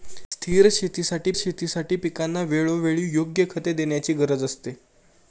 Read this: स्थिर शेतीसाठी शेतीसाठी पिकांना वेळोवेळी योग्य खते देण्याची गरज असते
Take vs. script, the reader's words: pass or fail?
pass